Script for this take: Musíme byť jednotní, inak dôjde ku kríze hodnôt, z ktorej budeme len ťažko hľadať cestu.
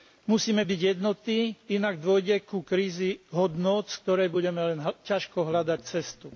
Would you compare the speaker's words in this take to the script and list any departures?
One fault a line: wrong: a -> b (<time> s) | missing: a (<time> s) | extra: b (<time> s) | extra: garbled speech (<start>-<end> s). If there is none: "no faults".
no faults